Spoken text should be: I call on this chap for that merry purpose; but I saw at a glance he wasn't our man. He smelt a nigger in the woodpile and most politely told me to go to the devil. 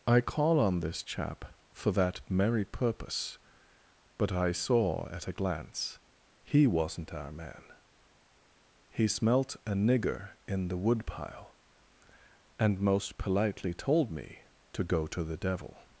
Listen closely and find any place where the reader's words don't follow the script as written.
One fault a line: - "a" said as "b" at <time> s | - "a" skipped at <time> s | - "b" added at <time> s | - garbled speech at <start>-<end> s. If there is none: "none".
none